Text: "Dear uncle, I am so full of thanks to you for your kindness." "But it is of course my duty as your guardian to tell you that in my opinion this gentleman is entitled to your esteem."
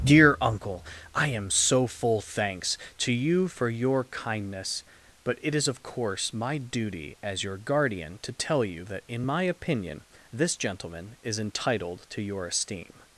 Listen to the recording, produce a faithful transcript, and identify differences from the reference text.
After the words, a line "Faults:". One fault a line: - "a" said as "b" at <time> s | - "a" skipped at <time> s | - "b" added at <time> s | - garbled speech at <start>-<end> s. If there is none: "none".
"Dear uncle, I am so full thanks to you for your kindness." "But it is of course my duty as your guardian to tell you that in my opinion this gentleman is entitled to your esteem."
Faults:
- "of" skipped at 2.2 s